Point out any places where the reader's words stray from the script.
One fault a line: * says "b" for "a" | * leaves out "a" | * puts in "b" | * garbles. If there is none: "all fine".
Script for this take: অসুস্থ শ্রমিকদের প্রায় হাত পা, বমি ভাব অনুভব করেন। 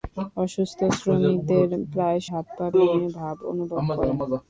all fine